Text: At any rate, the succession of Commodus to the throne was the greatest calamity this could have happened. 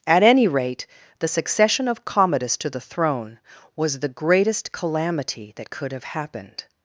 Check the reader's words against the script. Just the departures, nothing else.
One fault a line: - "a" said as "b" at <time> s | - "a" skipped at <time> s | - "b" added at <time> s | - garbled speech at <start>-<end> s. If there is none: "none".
- "this" said as "that" at 5.6 s